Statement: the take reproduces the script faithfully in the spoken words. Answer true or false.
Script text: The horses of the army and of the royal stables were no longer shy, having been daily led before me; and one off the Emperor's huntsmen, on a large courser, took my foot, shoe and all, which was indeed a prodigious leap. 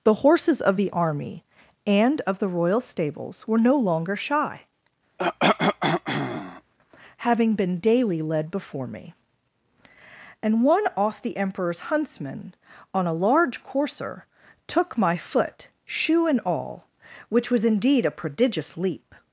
true